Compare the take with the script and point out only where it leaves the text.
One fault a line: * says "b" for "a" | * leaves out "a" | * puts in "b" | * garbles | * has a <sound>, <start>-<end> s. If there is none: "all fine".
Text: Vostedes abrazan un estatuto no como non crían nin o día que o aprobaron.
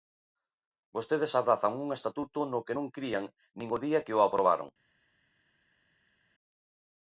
* says "que" for "como"